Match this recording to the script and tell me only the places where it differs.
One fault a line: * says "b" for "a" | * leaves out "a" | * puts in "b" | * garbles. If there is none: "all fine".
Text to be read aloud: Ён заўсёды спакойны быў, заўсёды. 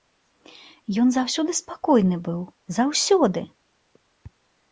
all fine